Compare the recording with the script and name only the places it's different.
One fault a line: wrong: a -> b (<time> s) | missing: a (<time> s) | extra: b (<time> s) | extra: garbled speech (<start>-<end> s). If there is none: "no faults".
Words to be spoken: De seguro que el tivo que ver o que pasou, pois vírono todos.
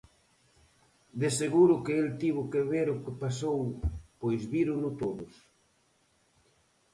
no faults